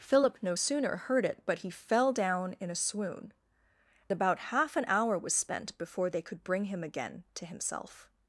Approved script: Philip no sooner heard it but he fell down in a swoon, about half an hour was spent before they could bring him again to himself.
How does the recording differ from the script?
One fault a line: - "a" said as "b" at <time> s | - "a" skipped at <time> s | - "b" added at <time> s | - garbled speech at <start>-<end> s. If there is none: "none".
none